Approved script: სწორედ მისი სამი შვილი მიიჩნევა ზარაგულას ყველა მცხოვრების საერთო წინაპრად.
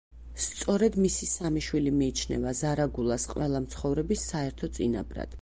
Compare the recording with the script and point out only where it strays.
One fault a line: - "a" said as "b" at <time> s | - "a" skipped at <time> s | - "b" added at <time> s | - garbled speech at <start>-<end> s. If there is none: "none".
none